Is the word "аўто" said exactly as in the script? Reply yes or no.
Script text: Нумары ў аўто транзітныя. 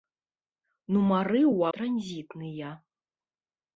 no